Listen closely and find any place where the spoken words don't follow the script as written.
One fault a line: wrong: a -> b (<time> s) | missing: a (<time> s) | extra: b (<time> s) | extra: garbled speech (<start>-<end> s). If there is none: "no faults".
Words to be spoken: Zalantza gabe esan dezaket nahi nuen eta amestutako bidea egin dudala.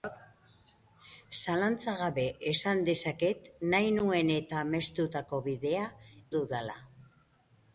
missing: egin (5.8 s)